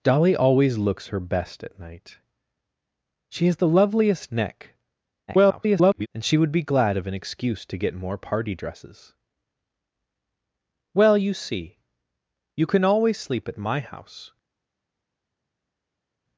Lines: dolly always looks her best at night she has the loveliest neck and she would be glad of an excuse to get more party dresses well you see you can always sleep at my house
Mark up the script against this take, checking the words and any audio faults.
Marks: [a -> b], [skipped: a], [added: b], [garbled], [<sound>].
dolly always looks her best at night she has the loveliest neck [garbled] and she would be glad of an excuse to get more party dresses well you see you can always sleep at my house